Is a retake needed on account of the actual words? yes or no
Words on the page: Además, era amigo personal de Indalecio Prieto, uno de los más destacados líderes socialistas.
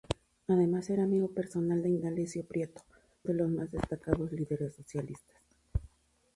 yes